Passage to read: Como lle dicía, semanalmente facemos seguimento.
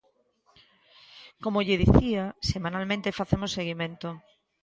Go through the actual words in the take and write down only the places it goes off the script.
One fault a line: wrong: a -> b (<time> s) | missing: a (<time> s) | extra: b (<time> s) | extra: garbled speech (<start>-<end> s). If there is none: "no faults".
no faults